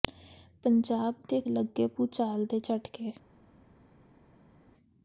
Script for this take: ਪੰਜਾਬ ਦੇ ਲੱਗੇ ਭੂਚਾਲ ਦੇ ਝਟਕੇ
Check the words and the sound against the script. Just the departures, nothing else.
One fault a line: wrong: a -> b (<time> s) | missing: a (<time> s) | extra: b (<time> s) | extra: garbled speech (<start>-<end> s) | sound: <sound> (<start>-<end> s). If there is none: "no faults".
no faults